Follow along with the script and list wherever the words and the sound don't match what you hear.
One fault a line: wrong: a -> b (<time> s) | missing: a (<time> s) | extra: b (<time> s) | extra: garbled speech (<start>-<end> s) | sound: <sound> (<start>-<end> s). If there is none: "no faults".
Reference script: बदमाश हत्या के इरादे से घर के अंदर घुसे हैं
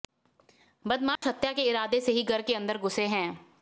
sound: dropout (1.2-1.2 s)
extra: ही (2.1 s)